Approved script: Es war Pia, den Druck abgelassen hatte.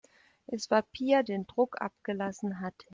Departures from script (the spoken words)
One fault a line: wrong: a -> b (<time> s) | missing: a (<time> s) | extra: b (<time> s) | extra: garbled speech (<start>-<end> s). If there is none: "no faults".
no faults